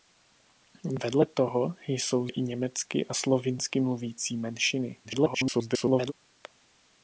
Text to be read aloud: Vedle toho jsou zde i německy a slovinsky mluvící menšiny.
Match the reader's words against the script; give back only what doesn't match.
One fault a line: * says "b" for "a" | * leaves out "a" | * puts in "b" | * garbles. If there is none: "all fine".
* leaves out "zde"
* garbles